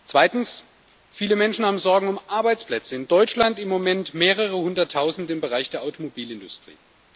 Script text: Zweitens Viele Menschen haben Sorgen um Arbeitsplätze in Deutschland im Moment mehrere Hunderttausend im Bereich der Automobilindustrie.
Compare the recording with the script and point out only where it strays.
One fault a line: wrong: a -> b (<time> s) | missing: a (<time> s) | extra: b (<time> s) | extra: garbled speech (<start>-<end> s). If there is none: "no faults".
no faults